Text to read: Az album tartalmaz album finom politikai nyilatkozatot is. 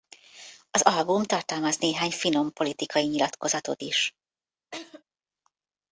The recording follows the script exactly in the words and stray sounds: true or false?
false